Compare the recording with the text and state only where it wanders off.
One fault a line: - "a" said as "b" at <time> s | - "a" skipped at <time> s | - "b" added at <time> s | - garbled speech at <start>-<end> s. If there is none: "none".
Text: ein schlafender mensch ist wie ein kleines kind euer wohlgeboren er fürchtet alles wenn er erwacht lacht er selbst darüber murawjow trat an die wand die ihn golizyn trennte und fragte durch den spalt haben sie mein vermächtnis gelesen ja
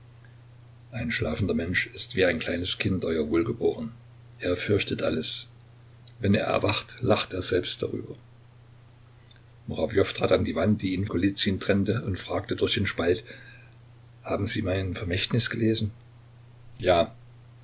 none